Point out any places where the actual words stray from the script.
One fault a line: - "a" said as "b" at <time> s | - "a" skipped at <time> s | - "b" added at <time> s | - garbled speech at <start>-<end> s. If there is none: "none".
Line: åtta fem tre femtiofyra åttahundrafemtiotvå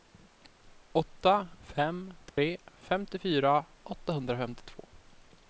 none